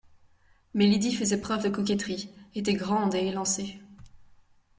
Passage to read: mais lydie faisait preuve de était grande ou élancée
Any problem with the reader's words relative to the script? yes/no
yes